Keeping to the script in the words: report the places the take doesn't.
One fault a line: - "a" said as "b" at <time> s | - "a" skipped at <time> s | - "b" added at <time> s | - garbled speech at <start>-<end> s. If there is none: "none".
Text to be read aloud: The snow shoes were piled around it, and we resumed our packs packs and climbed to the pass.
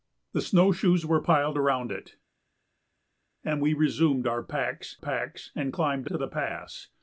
none